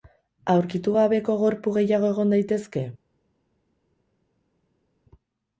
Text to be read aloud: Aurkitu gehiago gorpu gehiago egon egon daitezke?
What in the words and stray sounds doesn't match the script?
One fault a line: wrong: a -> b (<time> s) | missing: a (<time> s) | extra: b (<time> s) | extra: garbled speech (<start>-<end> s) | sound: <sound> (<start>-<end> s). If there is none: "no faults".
wrong: gehiago -> gabeko (0.9 s)
missing: egon (2.4 s)